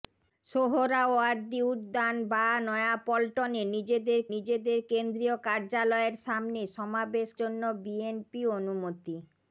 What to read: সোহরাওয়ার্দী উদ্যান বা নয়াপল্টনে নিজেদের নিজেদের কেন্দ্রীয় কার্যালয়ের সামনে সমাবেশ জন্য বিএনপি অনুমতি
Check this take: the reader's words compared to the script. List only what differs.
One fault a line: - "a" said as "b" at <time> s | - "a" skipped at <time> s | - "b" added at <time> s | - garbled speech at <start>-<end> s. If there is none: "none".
none